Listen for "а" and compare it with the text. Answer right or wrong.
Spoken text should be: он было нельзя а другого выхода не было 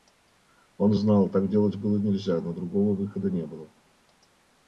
wrong